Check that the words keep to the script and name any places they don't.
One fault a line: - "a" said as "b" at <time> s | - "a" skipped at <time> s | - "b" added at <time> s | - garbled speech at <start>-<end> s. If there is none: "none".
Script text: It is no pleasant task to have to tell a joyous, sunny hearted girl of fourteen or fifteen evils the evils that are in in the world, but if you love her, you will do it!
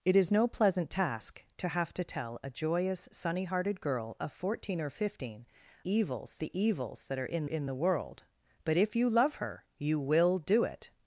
none